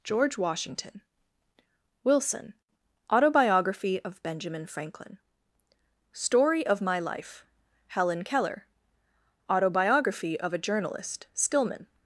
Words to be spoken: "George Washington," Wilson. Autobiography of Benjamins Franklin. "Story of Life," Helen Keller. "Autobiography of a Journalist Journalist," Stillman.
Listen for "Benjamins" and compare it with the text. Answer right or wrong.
wrong